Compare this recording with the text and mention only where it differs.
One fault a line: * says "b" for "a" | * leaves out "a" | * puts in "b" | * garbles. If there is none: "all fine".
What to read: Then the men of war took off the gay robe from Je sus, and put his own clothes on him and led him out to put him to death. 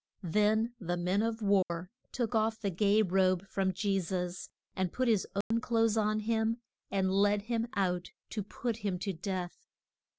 all fine